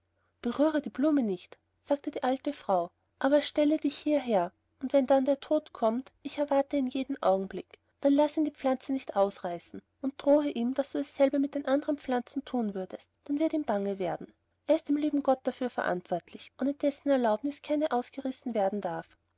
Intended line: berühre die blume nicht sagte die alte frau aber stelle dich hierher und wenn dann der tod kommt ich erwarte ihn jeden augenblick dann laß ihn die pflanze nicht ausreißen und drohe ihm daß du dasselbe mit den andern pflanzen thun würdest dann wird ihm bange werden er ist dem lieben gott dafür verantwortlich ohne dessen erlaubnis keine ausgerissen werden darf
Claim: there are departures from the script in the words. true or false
false